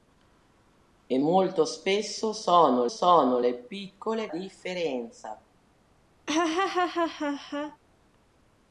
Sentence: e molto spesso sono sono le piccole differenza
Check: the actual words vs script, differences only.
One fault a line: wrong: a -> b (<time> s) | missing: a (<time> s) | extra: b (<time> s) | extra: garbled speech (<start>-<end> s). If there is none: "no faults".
no faults